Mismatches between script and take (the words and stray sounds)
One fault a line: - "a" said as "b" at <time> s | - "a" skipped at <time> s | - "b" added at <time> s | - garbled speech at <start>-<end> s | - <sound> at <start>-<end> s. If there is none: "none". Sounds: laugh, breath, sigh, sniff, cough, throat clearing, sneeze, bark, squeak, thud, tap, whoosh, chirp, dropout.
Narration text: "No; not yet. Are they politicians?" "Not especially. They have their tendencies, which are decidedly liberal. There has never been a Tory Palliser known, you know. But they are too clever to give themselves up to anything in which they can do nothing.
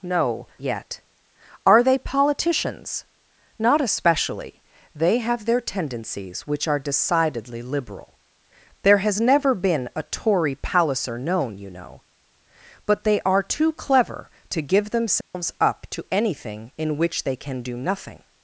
- "not" skipped at 0.5 s
- dropout at 15.2-15.3 s